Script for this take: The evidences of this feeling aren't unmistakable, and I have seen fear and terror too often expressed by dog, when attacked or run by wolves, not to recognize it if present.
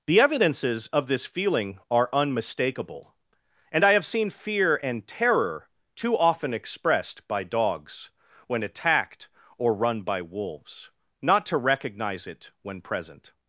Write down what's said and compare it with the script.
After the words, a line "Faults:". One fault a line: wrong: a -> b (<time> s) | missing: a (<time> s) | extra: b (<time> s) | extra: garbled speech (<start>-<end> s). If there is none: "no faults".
The evidences of this feeling are unmistakable, and I have seen fear and terror too often expressed by dogs, when attacked or run by wolves, not to recognize it when present.
Faults:
wrong: aren't -> are (1.9 s)
wrong: dog -> dogs (7.4 s)
wrong: if -> when (12.6 s)